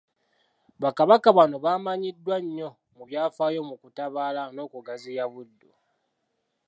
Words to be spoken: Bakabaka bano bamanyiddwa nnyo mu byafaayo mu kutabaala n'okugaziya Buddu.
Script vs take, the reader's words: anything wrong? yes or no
no